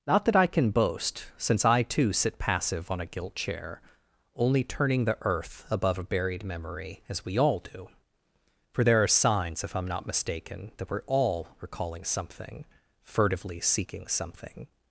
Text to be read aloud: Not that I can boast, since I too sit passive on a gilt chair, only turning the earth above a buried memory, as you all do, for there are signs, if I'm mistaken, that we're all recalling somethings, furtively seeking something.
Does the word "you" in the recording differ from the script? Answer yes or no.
yes